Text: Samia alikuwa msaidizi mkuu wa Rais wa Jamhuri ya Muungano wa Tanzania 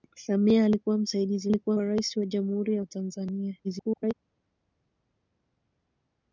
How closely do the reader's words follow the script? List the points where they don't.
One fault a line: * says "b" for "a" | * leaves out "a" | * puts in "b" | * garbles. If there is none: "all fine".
* says "alikuwa" for "mkuu"
* leaves out "Muungano"
* garbles